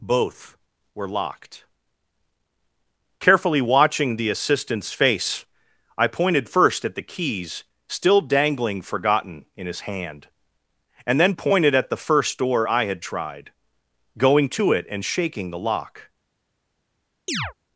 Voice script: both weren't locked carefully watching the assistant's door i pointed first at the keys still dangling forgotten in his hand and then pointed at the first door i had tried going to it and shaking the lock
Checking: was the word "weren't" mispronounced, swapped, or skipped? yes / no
yes